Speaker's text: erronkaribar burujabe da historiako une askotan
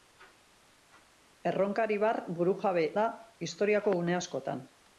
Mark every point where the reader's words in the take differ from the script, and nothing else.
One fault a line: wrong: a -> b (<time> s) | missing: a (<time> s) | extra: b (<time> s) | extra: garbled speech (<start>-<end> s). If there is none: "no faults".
no faults